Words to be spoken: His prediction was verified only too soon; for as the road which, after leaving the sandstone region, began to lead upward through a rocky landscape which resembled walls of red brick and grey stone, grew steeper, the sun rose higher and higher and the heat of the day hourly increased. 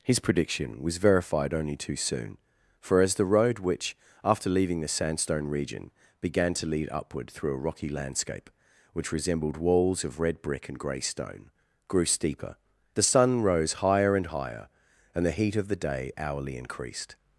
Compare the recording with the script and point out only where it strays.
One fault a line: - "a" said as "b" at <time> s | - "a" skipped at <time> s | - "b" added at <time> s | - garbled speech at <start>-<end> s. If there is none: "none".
none